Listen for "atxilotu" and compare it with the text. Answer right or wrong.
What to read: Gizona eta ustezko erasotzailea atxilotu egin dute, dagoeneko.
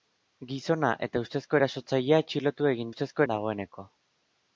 right